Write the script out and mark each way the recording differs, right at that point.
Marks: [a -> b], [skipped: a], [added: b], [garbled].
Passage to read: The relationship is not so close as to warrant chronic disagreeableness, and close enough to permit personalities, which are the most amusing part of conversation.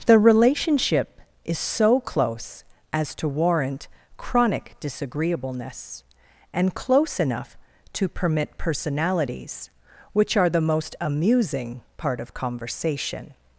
The relationship is [skipped: not] so close as to warrant chronic disagreeableness, and close enough to permit personalities, which are the most amusing part of conversation.